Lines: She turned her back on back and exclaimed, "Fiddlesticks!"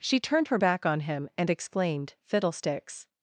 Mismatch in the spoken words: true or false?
true